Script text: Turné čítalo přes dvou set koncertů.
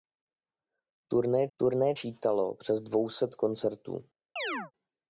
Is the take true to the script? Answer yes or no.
no